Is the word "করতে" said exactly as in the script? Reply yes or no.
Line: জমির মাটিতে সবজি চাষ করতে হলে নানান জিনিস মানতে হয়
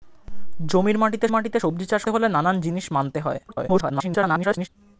no